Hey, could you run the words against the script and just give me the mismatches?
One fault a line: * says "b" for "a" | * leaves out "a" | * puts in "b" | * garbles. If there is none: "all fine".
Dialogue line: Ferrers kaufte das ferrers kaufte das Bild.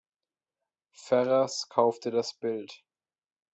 * leaves out "ferrers kaufte das"